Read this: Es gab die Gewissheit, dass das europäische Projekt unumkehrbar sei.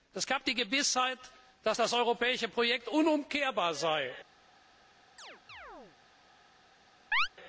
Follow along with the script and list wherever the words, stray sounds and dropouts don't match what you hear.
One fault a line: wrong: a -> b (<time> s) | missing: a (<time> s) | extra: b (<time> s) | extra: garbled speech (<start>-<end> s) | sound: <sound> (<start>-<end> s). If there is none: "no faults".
sound: chirp (5.2-6.0 s)
sound: chirp (7.1-7.3 s)